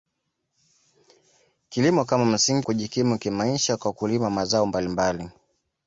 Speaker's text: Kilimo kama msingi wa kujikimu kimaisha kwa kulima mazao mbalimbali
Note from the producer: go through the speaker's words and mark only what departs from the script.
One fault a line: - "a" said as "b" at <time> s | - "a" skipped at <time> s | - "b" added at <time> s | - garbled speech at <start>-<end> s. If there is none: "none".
- "wa" skipped at 2.7 s